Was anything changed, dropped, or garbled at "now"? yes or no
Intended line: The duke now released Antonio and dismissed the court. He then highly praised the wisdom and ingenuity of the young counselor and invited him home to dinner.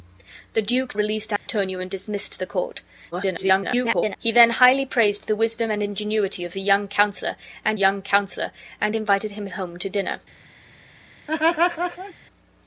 yes